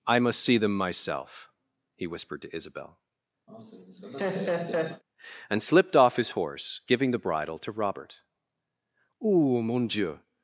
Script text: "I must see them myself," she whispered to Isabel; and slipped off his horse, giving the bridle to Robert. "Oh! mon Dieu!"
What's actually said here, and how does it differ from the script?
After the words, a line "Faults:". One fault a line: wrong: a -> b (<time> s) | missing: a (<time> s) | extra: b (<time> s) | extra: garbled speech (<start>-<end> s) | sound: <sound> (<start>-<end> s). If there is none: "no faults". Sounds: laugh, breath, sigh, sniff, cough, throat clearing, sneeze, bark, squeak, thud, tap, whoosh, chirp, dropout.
"I must see them myself," he whispered to Isabel; and slipped off his horse, giving the bridle to Robert. "Oh! mon Dieu!"
Faults:
wrong: she -> he (1.9 s)
sound: laugh (3.5-5.0 s)